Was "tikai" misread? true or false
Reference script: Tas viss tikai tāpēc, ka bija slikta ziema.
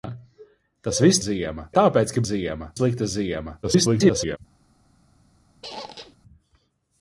true